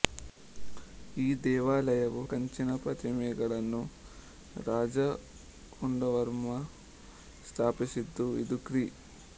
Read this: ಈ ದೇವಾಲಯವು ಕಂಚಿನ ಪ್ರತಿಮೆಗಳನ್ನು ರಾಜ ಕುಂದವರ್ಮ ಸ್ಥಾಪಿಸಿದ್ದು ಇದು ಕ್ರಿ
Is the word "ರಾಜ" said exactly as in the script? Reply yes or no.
yes